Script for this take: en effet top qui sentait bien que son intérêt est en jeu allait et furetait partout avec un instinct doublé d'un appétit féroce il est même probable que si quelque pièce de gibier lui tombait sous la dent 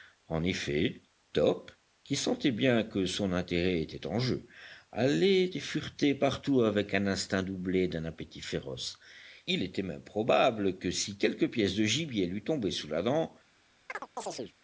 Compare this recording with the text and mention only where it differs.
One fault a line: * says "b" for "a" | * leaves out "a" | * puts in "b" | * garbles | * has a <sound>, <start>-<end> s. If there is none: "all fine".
* says "était" for "est"
* says "était" for "est"
* has a chirp, 13.9-14.5 s